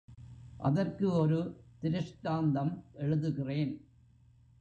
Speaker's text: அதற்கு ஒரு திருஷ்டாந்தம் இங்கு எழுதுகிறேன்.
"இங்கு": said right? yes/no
no